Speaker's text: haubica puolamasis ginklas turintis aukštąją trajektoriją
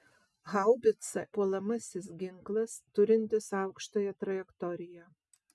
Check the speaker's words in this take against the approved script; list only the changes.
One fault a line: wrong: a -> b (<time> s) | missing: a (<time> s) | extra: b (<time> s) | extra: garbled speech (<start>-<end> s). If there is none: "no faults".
no faults